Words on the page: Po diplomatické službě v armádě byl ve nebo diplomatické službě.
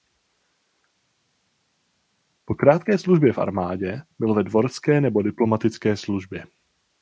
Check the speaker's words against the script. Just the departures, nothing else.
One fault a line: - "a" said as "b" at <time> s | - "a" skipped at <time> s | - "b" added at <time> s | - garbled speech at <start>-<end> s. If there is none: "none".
- "diplomatické" said as "krátké" at 2.5 s
- "dvorské" added at 4.4 s